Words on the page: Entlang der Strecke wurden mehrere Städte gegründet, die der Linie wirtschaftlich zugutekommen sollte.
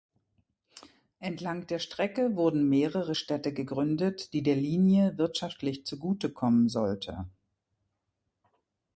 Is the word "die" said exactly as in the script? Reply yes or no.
yes